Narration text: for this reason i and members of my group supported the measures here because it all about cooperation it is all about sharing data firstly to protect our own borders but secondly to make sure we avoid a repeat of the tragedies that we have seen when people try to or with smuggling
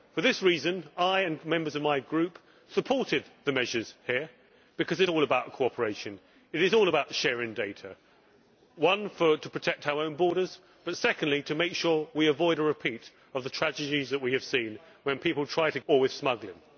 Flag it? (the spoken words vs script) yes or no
no